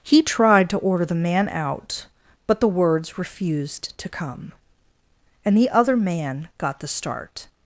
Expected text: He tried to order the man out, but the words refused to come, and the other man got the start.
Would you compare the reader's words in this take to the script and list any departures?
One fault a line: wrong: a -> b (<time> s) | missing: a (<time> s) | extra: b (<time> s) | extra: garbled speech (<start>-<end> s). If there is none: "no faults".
no faults